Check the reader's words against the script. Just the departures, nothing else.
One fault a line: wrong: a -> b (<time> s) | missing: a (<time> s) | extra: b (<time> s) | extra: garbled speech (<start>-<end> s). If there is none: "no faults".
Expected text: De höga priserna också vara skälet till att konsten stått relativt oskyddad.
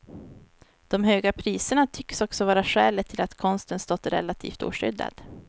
extra: tycks (1.9 s)